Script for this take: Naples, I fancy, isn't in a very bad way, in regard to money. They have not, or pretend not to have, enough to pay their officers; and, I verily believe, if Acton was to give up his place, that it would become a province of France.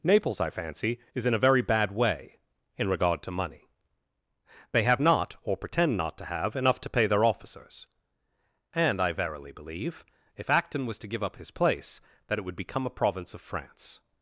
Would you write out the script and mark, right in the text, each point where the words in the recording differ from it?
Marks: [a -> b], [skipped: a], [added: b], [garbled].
Naples, I fancy, [isn't -> is] in a very bad way, in regard to money. They have not, or pretend not to have, enough to pay their officers; and, I verily believe, if Acton was to give up his place, that it would become a province of France.